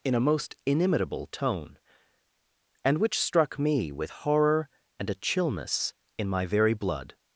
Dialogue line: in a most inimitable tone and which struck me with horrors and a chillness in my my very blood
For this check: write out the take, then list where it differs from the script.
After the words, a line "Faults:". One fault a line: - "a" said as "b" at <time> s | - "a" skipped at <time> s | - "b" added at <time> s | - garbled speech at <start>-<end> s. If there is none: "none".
in a most inimitable tone and which struck me with horror and a chillness in my very blood
Faults:
- "horrors" said as "horror" at 4.1 s
- "my" skipped at 6.5 s